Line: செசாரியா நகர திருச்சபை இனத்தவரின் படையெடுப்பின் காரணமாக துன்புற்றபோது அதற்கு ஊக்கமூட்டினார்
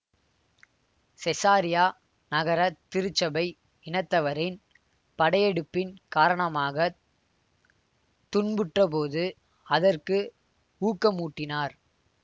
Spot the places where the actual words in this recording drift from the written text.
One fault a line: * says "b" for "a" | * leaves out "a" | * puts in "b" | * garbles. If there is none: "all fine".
all fine